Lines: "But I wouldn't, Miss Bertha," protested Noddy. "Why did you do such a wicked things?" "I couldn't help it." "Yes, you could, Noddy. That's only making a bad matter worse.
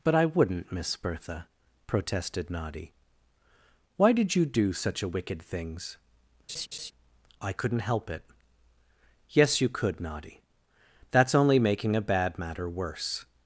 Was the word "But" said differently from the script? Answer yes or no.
no